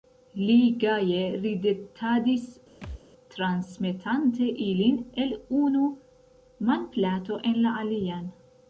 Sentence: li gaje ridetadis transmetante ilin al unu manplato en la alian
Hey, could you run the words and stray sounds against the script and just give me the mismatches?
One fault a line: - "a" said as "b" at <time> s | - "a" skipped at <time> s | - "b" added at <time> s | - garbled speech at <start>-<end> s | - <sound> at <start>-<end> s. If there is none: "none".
- thud at 2.8-3.0 s
- "al" said as "el" at 5.2 s